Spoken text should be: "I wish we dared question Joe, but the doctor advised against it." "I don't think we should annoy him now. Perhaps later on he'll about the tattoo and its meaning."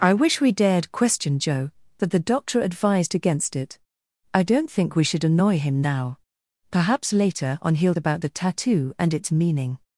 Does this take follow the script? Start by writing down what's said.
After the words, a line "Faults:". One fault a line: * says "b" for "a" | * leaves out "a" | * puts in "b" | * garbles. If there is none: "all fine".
"I wish we dared question Joe, but the doctor advised against it." "I don't think we should annoy him now. Perhaps later on he'll about the tattoo and its meaning."
Faults:
all fine